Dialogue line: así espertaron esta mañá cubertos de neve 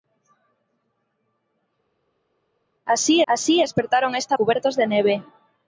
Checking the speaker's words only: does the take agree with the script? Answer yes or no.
no